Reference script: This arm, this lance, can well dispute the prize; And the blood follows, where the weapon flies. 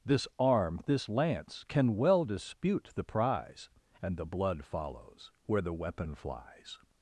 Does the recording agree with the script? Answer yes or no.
yes